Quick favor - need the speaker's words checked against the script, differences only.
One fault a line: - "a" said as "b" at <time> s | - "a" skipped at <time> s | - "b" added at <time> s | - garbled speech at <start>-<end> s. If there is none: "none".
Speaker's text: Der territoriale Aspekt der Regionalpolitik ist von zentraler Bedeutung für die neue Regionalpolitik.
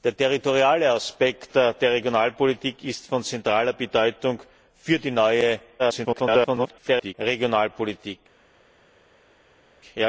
- garbled speech at 5.8-7.1 s